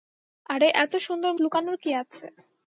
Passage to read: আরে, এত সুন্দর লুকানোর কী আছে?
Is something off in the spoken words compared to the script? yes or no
no